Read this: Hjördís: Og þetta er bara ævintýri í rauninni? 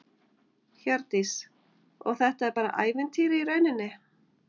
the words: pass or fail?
pass